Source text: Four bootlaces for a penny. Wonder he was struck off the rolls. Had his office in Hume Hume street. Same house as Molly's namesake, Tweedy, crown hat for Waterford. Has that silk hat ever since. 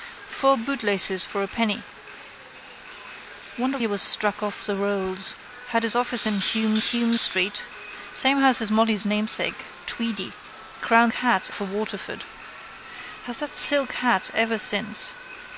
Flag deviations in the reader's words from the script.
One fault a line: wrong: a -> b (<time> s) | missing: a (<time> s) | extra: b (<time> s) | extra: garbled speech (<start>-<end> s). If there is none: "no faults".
no faults